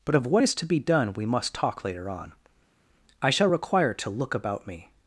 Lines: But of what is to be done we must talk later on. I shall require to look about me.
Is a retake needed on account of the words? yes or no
no